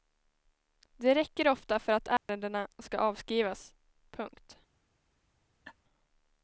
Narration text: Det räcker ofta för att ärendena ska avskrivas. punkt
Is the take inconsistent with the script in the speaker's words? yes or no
no